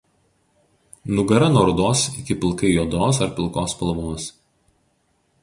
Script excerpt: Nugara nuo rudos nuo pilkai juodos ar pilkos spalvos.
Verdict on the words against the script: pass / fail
fail